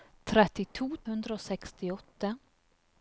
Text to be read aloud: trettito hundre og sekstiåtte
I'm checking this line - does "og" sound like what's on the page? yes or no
yes